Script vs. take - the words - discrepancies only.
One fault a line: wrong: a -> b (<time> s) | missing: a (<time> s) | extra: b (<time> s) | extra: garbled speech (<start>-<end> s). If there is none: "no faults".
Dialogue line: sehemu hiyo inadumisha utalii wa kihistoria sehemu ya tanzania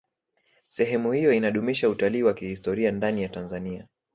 wrong: sehemu -> ndani (2.9 s)